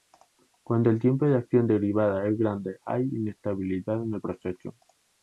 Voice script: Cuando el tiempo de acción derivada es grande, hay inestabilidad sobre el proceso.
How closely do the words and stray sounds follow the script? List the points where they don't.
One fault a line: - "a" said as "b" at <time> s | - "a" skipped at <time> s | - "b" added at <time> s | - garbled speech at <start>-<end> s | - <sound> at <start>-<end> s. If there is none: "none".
- "sobre" said as "en" at 4.0 s